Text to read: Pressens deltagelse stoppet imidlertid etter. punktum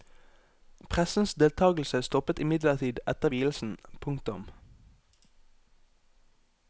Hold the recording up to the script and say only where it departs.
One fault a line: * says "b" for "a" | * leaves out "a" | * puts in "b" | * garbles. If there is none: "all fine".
* puts in "vielsen"